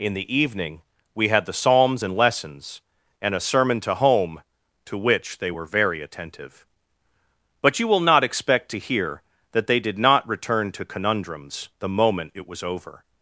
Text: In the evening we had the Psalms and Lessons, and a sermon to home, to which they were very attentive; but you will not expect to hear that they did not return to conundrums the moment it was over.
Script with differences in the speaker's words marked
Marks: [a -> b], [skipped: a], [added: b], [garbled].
In the evening we had the Psalms and Lessons, and a sermon to home, to which they were very attentive; but you will not expect to hear that they did not return to conundrums the moment it was over.